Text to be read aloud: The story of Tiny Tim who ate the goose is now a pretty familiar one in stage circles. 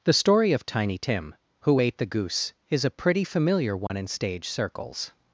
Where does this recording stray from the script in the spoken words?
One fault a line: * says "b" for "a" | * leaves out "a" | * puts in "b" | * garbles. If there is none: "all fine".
* leaves out "now"